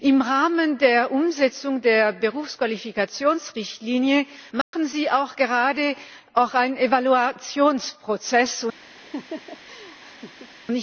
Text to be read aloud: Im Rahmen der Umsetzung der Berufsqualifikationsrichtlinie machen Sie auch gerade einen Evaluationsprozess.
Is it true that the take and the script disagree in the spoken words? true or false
false